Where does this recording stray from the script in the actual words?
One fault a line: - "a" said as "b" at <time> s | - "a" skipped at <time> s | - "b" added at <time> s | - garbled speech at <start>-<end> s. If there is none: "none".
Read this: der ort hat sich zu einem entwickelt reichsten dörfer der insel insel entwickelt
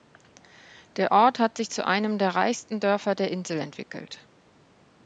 - "entwickelt" said as "der" at 2.2 s
- "insel" skipped at 3.6 s